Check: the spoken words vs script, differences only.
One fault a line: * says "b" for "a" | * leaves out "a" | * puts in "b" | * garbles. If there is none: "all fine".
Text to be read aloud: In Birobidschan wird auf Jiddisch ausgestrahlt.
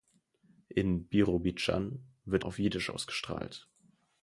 all fine